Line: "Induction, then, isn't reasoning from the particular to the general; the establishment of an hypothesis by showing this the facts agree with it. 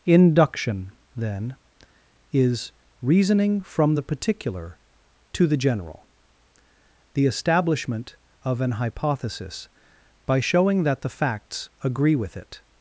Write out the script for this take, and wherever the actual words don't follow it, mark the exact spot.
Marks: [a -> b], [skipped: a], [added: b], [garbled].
"Induction, then, [isn't -> is] reasoning from the particular to the general; the establishment of an hypothesis by showing [this -> that] the facts agree with it.